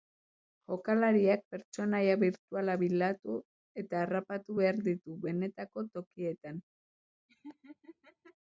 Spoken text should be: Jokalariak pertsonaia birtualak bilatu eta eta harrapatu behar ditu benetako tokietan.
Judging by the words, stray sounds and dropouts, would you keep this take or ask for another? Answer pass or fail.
fail